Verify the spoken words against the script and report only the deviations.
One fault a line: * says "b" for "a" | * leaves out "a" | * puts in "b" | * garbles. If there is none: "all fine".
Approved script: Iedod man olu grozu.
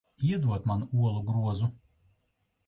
all fine